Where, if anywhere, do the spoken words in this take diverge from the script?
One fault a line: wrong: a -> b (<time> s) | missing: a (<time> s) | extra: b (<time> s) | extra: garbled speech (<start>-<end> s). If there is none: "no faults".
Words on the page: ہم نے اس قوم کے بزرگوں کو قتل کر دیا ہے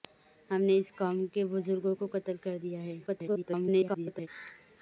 extra: garbled speech (3.1-4.3 s)